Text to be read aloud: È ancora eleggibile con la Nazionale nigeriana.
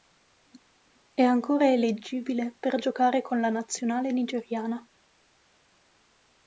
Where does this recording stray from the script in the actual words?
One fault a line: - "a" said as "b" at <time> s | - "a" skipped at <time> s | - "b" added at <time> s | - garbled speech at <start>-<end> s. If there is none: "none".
- "per giocare" added at 2.6 s